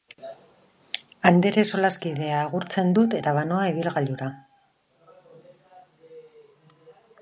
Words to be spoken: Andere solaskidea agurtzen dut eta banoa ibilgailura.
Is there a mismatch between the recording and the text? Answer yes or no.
no